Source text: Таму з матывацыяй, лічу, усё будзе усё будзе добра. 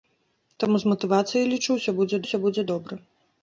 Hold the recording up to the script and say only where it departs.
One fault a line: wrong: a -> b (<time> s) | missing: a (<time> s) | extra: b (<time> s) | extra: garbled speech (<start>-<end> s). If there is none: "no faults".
no faults